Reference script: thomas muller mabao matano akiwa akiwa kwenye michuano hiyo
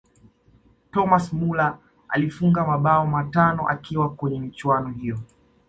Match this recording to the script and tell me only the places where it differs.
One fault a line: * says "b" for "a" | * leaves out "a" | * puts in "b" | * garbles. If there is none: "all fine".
* puts in "alifunga"
* leaves out "akiwa"